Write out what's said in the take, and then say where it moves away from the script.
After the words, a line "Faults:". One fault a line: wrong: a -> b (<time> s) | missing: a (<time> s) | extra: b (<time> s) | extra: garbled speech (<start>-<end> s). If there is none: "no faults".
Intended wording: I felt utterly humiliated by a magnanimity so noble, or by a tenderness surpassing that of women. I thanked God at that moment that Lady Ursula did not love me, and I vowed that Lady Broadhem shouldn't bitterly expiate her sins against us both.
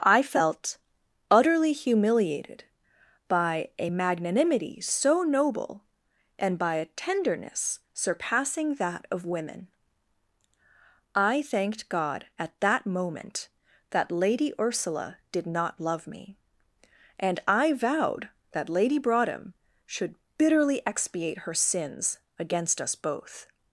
I felt utterly humiliated by a magnanimity so noble, and by a tenderness surpassing that of women. I thanked God at that moment that Lady Ursula did not love me, and I vowed that Lady Broadhem should bitterly expiate her sins against us both.
Faults:
wrong: or -> and (6.4 s)
wrong: shouldn't -> should (19.8 s)